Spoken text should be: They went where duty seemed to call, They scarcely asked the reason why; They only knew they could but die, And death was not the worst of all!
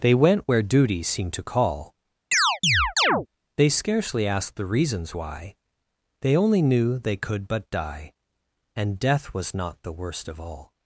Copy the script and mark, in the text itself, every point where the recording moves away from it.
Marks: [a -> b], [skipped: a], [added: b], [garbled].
They went where duty seemed to call, They scarcely asked the [reason -> reasons] why; They only knew they could but die, And death was not the worst of all!